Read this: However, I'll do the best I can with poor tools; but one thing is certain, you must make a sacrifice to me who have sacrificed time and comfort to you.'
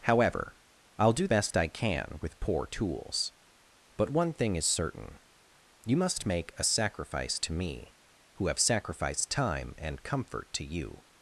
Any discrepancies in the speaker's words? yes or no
yes